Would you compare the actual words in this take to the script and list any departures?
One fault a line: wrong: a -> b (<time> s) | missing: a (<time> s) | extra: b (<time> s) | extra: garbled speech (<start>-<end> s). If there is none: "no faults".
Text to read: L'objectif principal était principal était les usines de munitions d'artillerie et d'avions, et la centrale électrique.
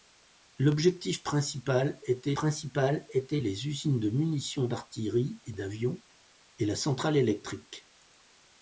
no faults